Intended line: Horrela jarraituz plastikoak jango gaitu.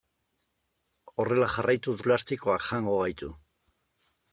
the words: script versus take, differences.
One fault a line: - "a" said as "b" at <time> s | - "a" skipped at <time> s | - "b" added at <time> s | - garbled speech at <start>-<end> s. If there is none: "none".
none